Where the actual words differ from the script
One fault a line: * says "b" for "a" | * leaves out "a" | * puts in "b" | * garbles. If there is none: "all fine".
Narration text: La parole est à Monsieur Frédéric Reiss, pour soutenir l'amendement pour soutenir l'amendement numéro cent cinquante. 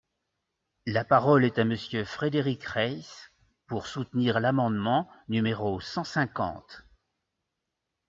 * leaves out "pour soutenir l'amendement"